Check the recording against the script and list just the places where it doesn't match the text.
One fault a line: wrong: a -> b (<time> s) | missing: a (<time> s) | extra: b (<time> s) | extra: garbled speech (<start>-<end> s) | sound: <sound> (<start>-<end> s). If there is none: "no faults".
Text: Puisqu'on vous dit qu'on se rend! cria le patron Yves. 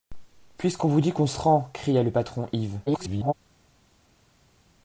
extra: garbled speech (2.9-3.3 s)